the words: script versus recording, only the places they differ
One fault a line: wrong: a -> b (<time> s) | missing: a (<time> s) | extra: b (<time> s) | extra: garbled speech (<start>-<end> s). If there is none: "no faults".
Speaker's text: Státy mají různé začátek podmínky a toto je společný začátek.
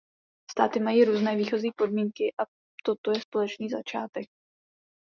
wrong: začátek -> výchozí (1.4 s)